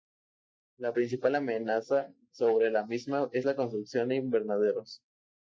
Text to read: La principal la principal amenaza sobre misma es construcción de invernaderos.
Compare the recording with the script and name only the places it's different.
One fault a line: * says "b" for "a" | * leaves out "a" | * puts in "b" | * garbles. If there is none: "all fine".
* leaves out "la principal"
* puts in "la"
* puts in "la"